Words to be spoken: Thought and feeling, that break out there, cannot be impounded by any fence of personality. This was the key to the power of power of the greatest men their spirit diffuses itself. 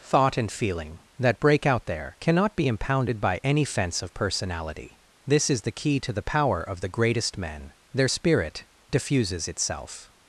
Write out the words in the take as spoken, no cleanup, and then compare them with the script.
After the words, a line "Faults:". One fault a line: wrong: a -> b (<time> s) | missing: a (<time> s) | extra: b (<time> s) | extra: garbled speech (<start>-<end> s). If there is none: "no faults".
Thought and feeling, that break out there, cannot be impounded by any fence of personality. This is the key to the power of the greatest men their spirit diffuses itself.
Faults:
wrong: was -> is (5.5 s)
missing: power of (6.8 s)